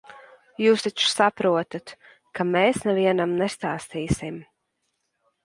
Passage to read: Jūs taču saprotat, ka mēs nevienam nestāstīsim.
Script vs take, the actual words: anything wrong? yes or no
no